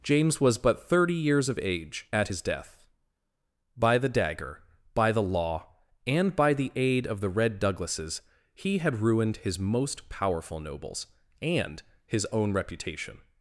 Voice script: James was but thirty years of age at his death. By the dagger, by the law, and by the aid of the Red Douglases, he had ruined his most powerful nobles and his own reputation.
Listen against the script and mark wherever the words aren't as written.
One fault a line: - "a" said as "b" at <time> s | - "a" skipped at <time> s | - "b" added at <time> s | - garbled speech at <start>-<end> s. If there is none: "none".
none